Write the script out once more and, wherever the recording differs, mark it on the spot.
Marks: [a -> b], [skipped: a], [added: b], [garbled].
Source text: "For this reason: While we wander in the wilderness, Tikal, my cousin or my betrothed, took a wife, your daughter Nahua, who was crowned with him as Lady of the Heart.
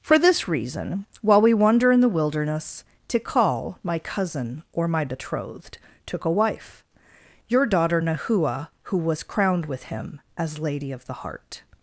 "For this reason: While we wander in the wilderness, Tikal, my cousin or my betrothed, took a wife, your daughter Nahua, who was crowned with him as Lady of the Heart.